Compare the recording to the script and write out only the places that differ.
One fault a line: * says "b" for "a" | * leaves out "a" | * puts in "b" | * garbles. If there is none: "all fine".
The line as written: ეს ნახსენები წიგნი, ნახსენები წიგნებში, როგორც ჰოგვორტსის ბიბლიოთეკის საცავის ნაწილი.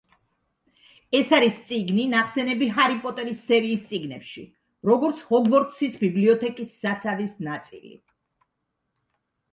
* says "არის" for "ნახსენები"
* puts in "ჰარი პოტერის სერიის"